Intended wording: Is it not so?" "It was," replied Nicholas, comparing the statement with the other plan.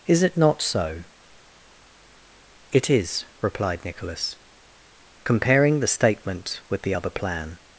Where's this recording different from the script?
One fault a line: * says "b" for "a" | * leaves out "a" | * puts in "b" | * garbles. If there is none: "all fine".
* says "is" for "was"